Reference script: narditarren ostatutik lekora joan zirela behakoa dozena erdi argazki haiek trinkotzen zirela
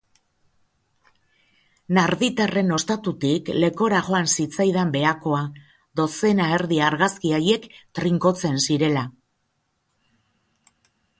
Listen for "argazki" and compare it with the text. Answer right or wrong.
right